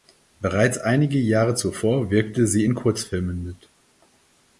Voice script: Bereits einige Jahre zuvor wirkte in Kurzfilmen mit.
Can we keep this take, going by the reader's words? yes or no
no